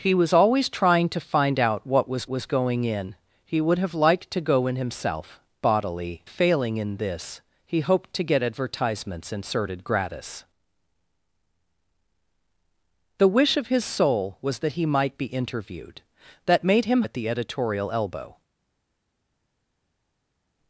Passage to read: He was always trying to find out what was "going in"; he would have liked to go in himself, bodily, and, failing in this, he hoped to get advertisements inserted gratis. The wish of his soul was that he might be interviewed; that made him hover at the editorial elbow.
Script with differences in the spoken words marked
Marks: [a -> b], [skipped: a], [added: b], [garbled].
He was always trying to find out what was [added: was] "going in"; he would have liked to go in himself, bodily, [skipped: and,] failing in this, he hoped to get advertisements inserted gratis. The wish of his soul was that he might be interviewed; that made him [skipped: hover] at the editorial elbow.